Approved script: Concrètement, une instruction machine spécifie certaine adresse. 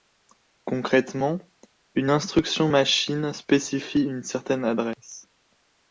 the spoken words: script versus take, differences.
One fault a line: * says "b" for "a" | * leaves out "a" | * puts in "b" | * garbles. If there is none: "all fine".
* puts in "une"